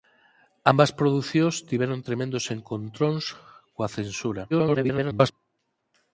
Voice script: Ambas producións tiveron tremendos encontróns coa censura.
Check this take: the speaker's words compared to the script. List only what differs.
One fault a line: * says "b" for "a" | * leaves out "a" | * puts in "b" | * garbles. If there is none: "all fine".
* garbles